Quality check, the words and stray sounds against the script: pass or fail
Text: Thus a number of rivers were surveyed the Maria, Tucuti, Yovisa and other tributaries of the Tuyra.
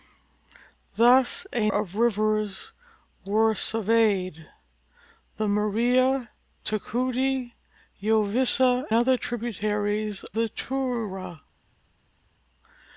fail